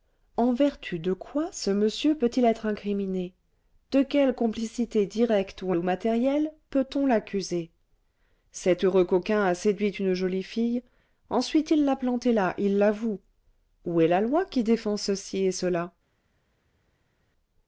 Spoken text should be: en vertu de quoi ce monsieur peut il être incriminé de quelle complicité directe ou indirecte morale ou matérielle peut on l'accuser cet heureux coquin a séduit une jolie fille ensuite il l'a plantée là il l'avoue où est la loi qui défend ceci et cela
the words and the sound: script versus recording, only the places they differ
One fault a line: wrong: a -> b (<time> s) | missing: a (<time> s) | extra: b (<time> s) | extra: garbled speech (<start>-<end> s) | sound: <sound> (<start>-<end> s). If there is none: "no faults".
missing: indirecte morale (5.8 s)